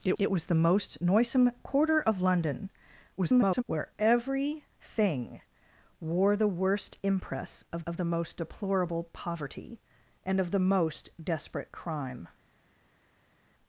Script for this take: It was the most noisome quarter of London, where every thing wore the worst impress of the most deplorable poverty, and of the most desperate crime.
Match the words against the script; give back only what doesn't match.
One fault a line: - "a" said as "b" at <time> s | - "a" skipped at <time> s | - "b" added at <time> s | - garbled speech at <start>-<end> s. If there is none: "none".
- "it" added at 0.2 s
- garbled speech at 3.2-3.6 s
- "of" added at 7.9 s